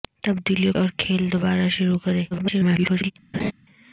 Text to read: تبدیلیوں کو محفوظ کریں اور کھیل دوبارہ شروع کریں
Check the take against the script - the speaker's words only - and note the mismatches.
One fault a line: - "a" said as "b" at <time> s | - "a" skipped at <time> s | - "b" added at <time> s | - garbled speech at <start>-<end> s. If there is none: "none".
- "کو محفوظ کریں" skipped at 0.7 s
- garbled speech at 2.3-3.1 s